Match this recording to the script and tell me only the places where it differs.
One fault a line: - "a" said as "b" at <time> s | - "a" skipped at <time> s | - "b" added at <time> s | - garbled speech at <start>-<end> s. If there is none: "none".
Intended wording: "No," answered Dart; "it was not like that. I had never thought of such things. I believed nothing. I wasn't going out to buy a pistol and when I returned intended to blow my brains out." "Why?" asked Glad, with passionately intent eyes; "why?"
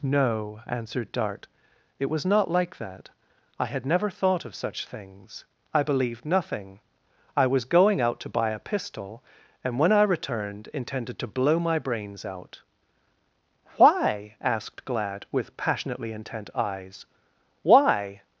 - "wasn't" said as "was" at 7.5 s